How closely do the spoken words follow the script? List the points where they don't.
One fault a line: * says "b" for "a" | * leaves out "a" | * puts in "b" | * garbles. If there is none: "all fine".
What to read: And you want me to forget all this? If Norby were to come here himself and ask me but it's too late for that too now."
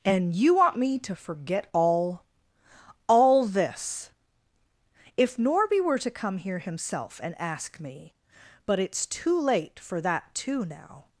* puts in "all"